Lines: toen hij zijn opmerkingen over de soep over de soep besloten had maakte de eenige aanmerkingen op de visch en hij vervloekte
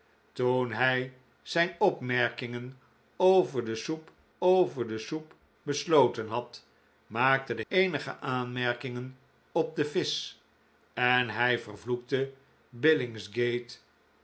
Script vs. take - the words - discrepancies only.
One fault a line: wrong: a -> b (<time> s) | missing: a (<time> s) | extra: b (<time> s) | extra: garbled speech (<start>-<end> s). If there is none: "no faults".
no faults